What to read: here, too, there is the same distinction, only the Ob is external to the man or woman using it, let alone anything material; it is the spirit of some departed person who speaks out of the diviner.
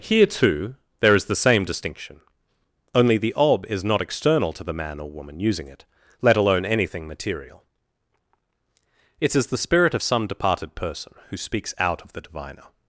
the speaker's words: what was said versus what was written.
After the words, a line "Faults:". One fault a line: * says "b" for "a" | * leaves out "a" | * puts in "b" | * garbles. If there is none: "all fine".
here, too, there is the same distinction, only the Ob is not external to the man or woman using it, let alone anything material; it is the spirit of some departed person who speaks out of the diviner.
Faults:
* puts in "not"